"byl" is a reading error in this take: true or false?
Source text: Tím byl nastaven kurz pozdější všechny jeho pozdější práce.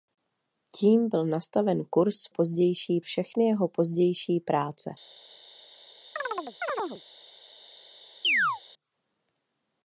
false